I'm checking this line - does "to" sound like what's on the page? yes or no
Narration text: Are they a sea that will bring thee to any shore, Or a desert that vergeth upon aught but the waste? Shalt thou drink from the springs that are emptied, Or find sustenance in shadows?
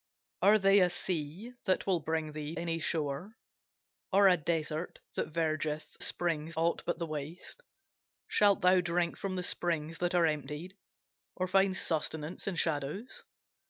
no